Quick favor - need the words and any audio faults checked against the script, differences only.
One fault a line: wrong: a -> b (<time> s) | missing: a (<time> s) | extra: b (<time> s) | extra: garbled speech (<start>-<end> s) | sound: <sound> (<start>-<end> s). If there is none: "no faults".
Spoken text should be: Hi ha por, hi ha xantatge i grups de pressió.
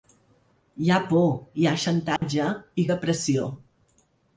sound: dropout (2.2-2.2 s)
missing: grups (2.9 s)